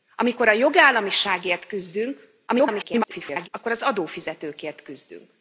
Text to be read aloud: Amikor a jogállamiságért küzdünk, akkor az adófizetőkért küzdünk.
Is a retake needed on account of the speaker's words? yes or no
yes